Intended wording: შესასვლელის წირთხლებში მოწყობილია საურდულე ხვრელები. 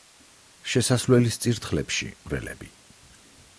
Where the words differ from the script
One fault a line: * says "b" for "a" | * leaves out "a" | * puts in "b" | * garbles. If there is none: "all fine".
* leaves out "მოწყობილია საურდულე"